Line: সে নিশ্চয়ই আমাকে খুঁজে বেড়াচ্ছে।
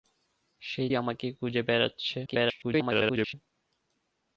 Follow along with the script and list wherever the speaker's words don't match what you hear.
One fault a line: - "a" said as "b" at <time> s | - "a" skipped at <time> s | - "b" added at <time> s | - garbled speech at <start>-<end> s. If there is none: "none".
- "নিশ্চয়ই" skipped at 0.8 s
- garbled speech at 2.3-3.3 s